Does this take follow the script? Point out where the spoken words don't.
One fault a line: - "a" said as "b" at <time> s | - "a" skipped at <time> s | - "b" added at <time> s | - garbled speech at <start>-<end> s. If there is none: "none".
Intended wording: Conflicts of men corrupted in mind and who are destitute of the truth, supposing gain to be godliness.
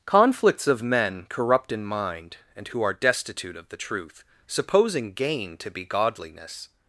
- "corrupted" said as "corrupt" at 1.3 s